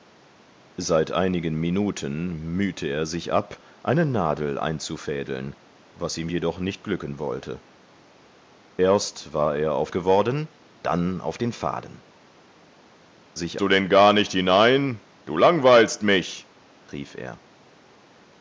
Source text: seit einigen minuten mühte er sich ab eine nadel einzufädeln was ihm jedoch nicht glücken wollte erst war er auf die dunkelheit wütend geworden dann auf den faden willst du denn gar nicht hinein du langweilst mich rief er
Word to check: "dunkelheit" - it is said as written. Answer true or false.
false